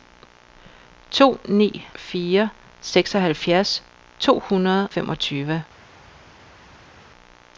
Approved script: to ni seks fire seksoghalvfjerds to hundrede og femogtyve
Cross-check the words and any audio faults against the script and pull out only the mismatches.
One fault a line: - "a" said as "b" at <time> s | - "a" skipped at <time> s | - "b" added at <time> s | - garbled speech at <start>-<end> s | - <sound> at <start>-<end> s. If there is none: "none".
- "seks" skipped at 1.9 s
- "og" skipped at 4.9 s